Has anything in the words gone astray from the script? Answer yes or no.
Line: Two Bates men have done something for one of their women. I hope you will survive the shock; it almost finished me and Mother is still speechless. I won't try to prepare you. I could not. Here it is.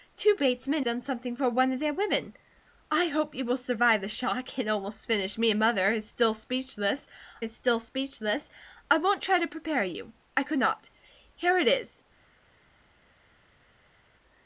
yes